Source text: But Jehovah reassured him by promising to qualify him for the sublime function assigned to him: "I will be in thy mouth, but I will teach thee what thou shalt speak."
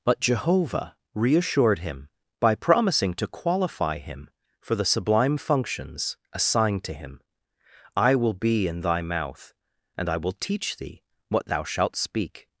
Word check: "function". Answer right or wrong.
wrong